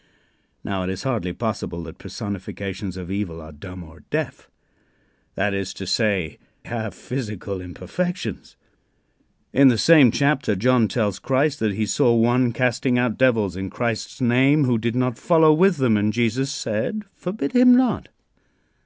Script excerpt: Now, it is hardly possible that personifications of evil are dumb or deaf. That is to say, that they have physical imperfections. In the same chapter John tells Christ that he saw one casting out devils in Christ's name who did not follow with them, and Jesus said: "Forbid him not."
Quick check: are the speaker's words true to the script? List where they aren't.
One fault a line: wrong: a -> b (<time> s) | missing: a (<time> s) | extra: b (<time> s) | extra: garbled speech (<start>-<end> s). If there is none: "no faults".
missing: that they (6.4 s)